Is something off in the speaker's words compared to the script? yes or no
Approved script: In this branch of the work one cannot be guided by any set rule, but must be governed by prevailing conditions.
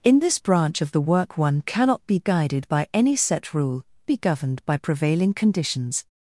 yes